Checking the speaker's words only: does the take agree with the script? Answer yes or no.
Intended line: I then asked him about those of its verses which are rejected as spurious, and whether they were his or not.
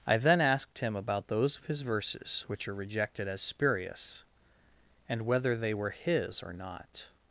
no